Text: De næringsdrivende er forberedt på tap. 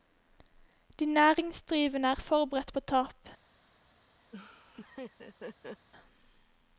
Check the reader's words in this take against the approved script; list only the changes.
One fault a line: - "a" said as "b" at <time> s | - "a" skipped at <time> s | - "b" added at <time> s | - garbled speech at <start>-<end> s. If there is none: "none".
none